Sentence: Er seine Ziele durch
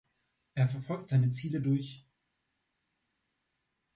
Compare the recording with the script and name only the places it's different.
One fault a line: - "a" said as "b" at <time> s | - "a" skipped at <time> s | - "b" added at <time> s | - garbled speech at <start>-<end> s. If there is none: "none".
- "verfolgt" added at 0.7 s